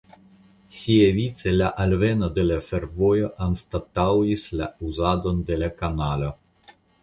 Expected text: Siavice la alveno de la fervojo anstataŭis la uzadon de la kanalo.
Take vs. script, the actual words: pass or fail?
pass